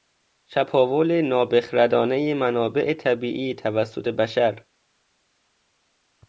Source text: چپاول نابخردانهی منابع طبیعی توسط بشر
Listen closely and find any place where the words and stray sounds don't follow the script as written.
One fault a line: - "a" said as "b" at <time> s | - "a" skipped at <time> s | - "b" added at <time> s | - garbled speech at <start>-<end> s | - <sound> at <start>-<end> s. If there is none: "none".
none